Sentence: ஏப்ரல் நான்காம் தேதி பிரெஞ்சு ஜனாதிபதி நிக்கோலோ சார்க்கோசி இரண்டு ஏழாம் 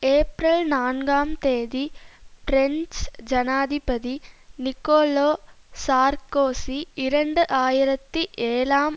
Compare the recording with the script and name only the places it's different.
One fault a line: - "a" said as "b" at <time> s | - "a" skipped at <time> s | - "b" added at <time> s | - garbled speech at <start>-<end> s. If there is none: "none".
- "ஆயிரத்தி" added at 7.5 s